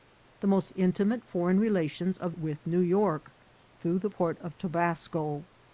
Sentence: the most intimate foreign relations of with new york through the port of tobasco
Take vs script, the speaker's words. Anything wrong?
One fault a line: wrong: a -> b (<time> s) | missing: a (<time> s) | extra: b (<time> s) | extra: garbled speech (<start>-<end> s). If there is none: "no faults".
no faults